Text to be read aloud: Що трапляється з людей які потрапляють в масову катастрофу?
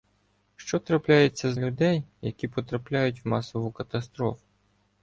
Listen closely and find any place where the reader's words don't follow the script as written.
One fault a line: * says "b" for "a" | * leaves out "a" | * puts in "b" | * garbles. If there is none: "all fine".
all fine